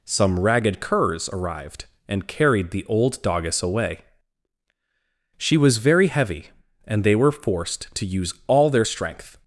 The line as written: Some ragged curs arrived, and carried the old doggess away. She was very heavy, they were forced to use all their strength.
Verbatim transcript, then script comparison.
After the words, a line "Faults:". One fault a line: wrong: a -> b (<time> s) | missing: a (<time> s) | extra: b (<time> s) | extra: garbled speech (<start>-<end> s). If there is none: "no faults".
Some ragged curs arrived, and carried the old doggess away. She was very heavy, and they were forced to use all their strength.
Faults:
extra: and (6.8 s)